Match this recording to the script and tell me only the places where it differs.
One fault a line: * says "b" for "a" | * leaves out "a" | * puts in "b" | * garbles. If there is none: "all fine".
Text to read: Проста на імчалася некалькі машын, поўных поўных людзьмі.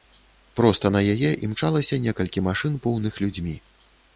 * puts in "яе"
* leaves out "поўных"